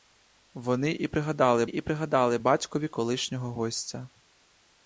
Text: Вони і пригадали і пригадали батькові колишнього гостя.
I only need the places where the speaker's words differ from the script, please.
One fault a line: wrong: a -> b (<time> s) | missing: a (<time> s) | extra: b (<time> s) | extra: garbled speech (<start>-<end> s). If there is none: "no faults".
no faults